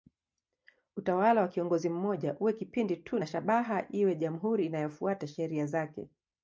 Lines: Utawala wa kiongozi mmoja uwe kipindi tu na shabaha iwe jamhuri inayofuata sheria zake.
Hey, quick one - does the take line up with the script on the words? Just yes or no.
yes